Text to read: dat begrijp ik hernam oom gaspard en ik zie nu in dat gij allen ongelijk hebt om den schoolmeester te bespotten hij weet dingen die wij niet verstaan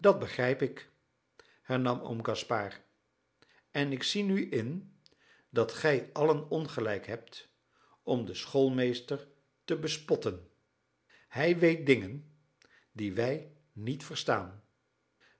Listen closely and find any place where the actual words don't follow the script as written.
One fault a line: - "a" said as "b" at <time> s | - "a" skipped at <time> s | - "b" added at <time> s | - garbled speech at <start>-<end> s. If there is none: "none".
none